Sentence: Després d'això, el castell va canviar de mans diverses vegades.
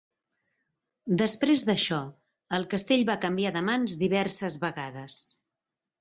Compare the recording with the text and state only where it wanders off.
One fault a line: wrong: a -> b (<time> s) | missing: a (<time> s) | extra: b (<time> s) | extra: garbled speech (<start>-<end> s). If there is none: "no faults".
no faults